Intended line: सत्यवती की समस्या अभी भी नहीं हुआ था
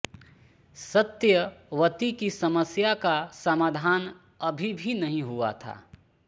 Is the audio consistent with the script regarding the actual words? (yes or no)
no